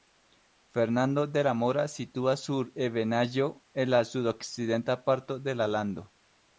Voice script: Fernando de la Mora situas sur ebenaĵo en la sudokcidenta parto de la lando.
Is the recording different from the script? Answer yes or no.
no